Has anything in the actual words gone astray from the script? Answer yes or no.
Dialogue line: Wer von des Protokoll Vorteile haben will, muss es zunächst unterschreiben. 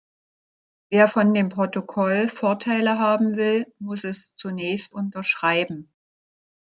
yes